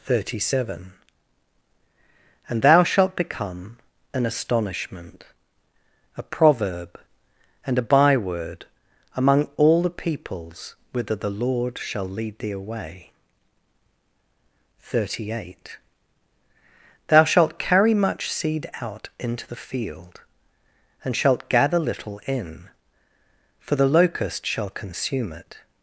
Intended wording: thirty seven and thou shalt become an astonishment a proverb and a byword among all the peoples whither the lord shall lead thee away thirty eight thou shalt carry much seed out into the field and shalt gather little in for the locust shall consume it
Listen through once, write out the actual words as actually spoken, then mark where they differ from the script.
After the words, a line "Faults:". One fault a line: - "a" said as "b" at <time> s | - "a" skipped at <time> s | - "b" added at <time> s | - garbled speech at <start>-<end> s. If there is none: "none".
thirty seven and thou shalt become an astonishment a proverb and a byword among all the peoples whither the lord shall lead thee away thirty eight thou shalt carry much seed out into the field and shalt gather little in for the locust shall consume it
Faults:
none